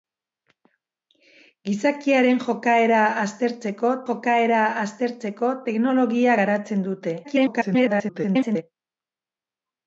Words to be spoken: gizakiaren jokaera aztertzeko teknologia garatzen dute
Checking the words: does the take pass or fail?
fail